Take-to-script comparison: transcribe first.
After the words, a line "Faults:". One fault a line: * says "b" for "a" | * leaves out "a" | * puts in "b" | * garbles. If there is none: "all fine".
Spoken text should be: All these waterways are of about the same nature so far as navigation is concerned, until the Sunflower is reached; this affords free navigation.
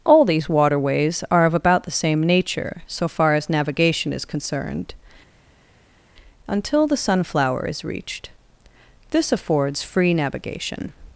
All these waterways are of about the same nature so far as navigation is concerned, until the Sunflower is reached; this affords free navigation.
Faults:
all fine